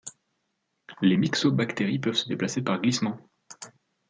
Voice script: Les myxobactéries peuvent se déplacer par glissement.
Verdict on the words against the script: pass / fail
pass